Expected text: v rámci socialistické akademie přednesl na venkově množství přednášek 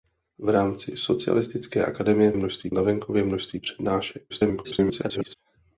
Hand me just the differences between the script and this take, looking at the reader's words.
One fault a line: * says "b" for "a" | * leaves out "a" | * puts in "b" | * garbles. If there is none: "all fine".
* says "množství" for "přednesl"
* garbles